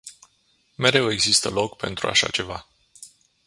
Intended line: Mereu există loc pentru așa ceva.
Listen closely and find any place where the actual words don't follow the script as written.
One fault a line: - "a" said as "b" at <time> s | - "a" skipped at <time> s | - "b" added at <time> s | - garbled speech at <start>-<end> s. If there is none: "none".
none